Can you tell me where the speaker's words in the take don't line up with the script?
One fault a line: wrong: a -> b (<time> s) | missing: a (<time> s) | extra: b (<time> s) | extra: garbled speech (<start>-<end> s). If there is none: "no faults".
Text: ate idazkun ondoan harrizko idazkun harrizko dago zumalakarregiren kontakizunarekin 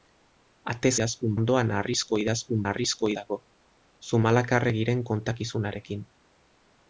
no faults